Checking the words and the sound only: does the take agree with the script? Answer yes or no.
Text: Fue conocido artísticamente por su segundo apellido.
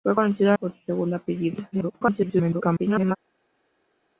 no